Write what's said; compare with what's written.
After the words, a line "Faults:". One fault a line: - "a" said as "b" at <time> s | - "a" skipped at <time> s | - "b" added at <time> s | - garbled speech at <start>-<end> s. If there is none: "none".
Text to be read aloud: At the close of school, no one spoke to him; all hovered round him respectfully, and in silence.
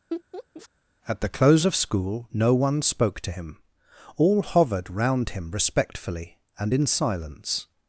At the close of school, no one spoke to him; all hovered round him respectfully, and in silence.
Faults:
none